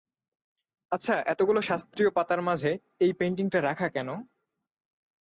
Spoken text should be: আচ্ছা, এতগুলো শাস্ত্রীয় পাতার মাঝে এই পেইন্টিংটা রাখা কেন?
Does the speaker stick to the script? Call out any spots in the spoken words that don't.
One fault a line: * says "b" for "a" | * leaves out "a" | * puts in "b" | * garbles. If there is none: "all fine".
all fine